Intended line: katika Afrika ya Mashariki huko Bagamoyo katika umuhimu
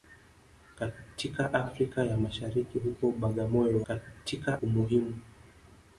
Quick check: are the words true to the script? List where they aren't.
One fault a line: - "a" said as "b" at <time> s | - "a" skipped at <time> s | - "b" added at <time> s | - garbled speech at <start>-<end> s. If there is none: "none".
none